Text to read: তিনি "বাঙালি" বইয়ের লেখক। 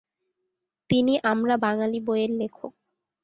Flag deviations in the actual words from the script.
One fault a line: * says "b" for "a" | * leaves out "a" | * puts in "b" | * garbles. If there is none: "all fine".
* puts in "আমরা"